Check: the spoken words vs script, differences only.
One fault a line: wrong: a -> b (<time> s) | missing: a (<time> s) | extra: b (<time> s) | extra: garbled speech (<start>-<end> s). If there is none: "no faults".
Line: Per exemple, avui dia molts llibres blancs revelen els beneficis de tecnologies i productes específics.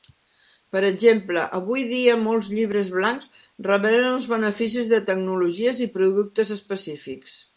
no faults